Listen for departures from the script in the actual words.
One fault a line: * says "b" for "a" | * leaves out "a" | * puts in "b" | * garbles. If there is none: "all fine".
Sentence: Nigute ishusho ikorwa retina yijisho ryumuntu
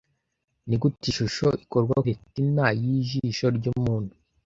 all fine